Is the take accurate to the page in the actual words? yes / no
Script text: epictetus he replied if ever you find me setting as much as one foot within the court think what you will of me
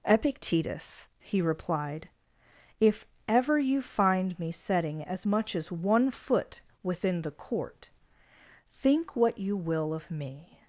yes